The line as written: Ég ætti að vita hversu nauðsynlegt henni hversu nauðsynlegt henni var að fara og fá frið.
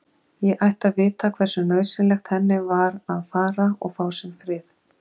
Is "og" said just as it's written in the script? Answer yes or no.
yes